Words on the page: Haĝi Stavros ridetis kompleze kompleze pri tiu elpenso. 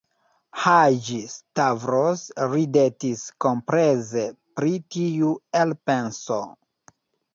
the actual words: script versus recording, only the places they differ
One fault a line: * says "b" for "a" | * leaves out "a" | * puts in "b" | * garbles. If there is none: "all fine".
* leaves out "kompleze"